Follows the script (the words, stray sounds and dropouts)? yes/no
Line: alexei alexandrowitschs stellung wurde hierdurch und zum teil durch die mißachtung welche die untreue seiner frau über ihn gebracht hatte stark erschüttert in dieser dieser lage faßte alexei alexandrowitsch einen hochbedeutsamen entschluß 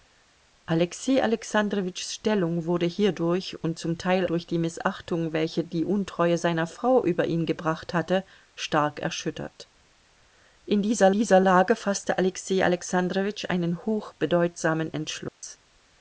no